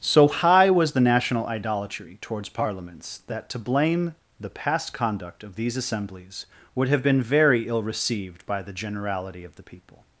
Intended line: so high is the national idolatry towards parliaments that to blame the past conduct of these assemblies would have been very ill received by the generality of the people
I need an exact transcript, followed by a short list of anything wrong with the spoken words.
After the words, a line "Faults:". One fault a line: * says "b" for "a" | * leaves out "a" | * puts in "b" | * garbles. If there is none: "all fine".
so high was the national idolatry towards parliaments that to blame the past conduct of these assemblies would have been very ill received by the generality of the people
Faults:
* says "was" for "is"